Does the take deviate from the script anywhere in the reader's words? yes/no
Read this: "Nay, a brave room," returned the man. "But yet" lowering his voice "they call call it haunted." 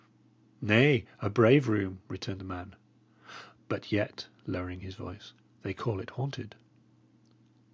yes